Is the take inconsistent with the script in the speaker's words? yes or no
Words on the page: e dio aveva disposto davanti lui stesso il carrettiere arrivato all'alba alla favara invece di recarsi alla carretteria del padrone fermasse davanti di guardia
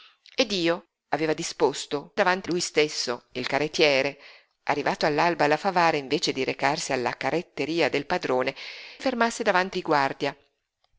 no